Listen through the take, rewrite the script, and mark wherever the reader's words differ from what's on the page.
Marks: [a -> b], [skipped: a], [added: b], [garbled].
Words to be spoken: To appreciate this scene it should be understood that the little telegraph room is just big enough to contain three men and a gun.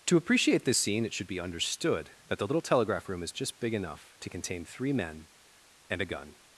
To appreciate this scene it should be understood that the little telegraph room is just big enough to contain three men and a gun.